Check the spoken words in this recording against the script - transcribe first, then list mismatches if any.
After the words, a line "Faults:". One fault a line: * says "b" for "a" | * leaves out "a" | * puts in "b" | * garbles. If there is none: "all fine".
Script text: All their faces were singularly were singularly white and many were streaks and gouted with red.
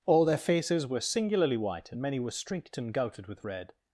All their faces were singularly white and many were streaked and gouted with red.
Faults:
* leaves out "were singularly"
* says "streaked" for "streaks"